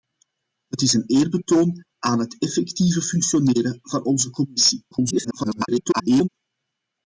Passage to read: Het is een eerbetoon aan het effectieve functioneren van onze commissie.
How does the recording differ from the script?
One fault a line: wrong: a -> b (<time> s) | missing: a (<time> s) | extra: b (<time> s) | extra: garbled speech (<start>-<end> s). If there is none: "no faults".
extra: garbled speech (4.9-6.3 s)